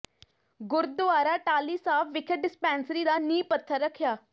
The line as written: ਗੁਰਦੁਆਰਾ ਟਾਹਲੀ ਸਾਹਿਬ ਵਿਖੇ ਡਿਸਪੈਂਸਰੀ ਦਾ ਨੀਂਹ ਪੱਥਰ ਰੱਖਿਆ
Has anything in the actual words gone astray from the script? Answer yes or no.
no